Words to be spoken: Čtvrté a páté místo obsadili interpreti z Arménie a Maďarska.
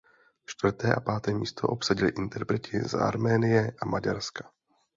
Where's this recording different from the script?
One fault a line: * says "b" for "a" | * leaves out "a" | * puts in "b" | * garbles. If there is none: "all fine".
all fine